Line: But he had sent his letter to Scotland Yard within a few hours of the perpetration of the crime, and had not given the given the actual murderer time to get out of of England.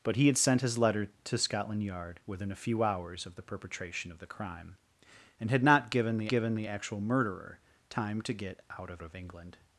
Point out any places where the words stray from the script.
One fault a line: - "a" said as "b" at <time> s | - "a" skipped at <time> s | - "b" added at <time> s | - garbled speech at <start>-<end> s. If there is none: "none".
none